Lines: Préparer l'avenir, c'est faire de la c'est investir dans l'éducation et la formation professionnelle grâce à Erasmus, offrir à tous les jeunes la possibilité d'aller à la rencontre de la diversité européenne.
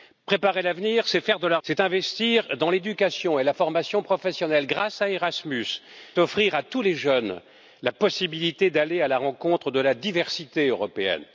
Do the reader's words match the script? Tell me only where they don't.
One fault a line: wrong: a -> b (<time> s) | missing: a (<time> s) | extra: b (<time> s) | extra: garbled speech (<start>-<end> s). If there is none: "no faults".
no faults